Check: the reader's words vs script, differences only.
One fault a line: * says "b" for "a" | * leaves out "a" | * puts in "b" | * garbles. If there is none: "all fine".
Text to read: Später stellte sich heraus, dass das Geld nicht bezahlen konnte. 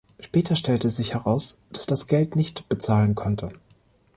all fine